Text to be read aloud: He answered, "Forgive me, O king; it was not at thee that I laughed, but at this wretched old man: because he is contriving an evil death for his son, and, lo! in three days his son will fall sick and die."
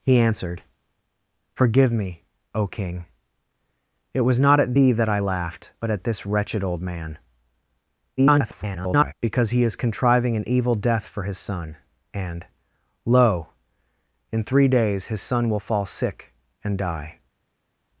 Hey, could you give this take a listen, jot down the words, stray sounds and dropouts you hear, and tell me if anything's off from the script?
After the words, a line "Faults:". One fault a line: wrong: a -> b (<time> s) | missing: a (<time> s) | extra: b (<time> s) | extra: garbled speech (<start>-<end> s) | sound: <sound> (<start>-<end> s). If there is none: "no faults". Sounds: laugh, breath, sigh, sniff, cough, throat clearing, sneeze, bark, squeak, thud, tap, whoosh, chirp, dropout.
He answered, "Forgive me, O king; it was not at thee that I laughed, but at this wretched old man: [garbled] because he is contriving an evil death for his son, and, lo! in three days his son will fall sick and die."
Faults:
extra: garbled speech (8.2-9.1 s)